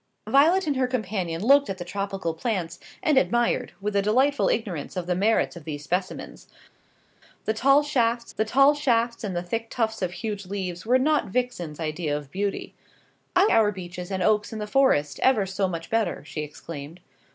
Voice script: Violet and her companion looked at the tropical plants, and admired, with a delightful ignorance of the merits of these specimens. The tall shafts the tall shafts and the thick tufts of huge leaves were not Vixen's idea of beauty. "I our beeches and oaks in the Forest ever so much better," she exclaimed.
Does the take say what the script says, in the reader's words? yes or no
yes